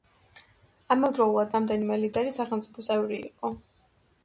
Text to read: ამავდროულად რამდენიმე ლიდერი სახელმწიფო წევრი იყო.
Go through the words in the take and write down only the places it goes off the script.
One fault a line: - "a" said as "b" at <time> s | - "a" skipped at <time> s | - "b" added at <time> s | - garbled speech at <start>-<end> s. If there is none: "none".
none